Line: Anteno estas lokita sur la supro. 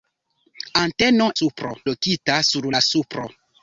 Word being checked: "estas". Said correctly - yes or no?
no